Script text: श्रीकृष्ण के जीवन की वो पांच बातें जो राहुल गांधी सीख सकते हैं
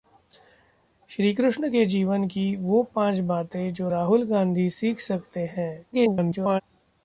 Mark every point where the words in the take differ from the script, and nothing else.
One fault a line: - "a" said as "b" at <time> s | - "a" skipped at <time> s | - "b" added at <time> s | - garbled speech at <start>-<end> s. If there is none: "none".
- garbled speech at 5.9-6.6 s